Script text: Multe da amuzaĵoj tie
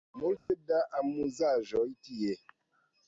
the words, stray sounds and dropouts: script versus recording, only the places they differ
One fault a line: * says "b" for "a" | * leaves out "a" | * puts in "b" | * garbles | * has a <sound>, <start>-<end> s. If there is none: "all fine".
* has a dropout, 0.4-0.5 s